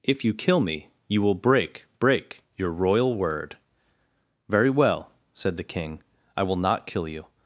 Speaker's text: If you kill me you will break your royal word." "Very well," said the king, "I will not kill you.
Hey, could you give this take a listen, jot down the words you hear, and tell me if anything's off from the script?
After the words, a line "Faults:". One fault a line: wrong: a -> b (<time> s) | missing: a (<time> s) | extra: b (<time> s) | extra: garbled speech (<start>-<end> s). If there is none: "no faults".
If you kill me you will break break your royal word." "Very well," said the king, "I will not kill you.
Faults:
extra: break (2.0 s)